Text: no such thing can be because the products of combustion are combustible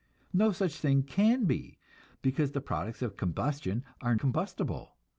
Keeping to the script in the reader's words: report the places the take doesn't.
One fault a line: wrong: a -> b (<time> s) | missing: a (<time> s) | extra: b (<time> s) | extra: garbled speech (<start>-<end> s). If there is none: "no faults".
no faults